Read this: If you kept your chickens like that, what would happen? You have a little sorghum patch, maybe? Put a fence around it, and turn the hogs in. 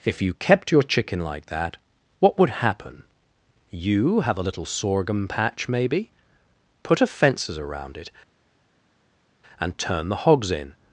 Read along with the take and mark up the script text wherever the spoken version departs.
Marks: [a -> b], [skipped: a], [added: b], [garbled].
If you kept your [chickens -> chicken] like that, what would happen? You have a little sorghum patch, maybe? Put a [fence -> fences] around it, and turn the hogs in.